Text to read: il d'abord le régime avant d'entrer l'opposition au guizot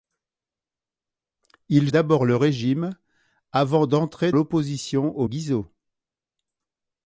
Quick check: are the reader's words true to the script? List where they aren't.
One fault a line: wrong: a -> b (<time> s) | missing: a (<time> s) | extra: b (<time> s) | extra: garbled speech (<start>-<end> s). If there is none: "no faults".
no faults